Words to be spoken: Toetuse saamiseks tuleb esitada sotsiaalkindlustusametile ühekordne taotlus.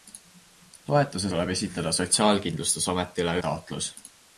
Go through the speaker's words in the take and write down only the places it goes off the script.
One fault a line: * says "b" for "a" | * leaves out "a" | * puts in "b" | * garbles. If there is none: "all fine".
* leaves out "saamiseks"
* leaves out "ühekordne"